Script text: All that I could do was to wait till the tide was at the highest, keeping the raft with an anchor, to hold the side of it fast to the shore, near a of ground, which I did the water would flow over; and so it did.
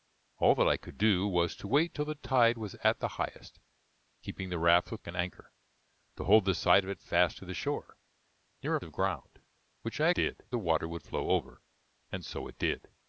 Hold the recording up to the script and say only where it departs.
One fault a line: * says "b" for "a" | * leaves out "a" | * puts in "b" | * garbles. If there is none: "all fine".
all fine